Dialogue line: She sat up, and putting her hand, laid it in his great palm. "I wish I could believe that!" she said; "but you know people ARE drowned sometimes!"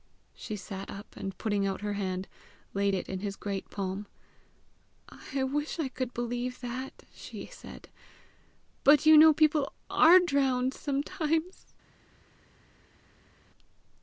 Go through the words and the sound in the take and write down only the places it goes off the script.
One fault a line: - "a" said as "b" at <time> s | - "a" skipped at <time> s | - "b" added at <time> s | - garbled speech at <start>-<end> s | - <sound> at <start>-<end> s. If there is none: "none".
- "out" added at 1.7 s